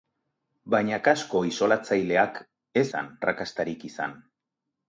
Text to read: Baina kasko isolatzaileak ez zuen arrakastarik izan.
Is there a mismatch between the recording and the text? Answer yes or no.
yes